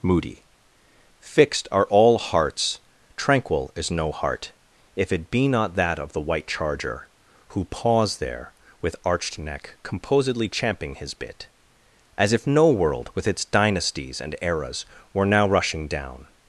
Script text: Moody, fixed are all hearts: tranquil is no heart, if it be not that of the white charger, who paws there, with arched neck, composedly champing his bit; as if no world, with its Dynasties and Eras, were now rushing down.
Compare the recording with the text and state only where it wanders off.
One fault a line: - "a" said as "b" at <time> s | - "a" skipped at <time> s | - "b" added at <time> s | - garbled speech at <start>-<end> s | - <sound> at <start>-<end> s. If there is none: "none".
none